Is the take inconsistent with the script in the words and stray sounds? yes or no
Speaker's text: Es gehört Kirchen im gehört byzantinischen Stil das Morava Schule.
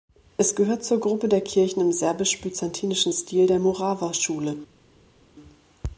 yes